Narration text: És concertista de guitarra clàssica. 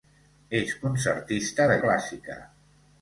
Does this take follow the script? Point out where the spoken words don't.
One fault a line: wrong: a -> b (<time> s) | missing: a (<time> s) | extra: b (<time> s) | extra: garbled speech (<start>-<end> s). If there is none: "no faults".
missing: guitarra (1.8 s)